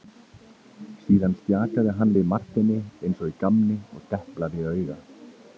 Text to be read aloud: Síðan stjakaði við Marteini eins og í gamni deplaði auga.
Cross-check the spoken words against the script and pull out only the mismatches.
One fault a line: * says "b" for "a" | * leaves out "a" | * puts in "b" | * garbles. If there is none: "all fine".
* puts in "hann"
* puts in "og"